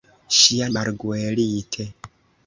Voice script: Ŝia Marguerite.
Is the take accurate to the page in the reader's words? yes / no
yes